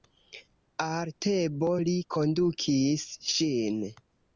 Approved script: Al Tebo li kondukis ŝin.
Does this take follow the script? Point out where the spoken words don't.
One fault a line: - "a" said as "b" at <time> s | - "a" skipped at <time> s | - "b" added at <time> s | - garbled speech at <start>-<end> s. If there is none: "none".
none